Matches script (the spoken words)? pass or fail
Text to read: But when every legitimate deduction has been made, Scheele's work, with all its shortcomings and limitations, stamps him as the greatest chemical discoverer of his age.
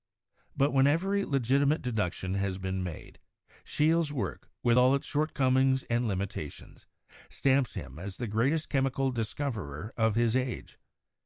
pass